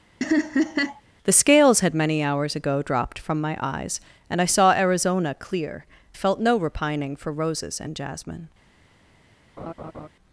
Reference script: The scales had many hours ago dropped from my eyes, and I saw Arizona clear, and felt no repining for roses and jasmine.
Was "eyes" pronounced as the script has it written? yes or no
yes